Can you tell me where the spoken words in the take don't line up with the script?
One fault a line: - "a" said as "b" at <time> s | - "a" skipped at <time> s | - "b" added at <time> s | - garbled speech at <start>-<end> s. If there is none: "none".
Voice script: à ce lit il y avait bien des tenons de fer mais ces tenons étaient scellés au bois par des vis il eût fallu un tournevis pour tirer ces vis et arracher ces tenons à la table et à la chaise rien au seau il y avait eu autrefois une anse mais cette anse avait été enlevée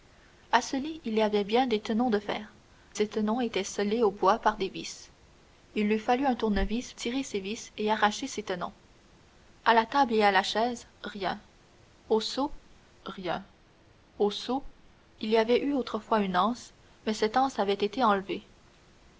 - "mais" skipped at 2.5 s
- "pour" skipped at 6.9 s
- "rien au seau" added at 13.1 s